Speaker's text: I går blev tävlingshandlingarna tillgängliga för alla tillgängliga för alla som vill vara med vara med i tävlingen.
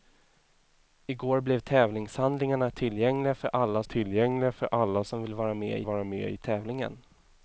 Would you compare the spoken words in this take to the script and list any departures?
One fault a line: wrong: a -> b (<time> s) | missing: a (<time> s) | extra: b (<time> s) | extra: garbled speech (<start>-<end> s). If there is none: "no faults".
no faults